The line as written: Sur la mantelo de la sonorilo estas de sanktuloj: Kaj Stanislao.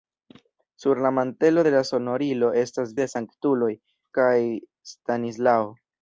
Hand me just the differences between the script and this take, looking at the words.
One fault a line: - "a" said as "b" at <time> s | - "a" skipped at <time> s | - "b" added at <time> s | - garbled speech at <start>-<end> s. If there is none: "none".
none